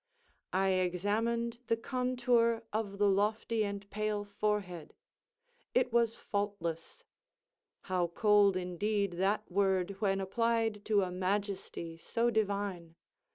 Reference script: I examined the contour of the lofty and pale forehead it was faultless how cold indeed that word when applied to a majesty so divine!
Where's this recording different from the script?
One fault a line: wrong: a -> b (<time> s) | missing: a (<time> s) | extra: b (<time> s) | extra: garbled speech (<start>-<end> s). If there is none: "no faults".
no faults